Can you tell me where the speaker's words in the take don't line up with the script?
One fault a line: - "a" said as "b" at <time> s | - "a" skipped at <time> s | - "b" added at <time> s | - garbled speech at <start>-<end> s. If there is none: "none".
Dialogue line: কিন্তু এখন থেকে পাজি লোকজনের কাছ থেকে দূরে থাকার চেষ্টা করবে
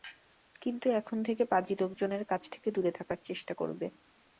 none